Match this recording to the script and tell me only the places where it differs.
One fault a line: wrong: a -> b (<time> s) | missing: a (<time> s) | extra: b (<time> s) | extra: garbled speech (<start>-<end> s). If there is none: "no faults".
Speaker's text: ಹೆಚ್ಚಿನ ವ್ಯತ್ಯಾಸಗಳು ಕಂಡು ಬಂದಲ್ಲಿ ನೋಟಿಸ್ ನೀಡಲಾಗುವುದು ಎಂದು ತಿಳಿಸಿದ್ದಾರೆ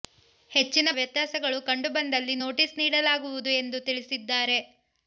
no faults